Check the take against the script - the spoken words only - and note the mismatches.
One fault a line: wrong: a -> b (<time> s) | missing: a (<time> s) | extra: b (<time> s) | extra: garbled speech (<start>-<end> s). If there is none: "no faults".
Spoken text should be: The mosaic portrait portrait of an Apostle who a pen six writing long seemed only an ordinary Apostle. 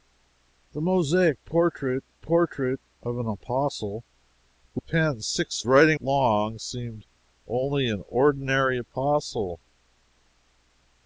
no faults